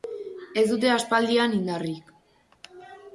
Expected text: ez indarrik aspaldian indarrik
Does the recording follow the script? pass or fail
fail